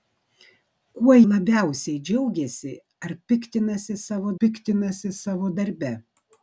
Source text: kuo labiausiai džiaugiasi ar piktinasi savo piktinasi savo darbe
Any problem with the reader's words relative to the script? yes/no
no